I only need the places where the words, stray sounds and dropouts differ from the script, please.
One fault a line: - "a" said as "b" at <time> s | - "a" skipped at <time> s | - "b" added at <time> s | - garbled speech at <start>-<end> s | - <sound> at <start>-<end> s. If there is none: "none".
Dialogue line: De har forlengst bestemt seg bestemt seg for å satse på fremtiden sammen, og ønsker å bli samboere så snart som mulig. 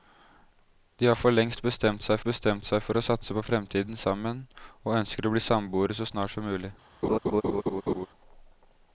- laugh at 7.0-8.1 s